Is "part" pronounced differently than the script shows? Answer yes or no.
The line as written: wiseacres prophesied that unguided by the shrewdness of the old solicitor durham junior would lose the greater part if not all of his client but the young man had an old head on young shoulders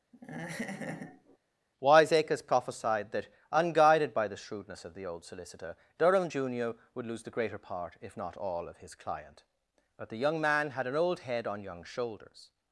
no